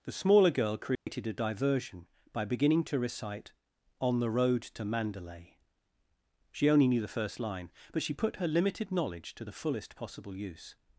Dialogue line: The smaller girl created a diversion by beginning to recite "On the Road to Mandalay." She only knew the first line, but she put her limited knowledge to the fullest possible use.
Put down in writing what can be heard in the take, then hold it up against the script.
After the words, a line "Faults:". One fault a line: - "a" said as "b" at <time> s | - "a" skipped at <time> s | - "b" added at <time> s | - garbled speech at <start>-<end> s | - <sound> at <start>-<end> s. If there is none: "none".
The smaller girl created a diversion by beginning to recite "On the Road to Mandalay." She only knew the first line, but she put her limited knowledge to the fullest possible use.
Faults:
- dropout at 1.0-1.1 s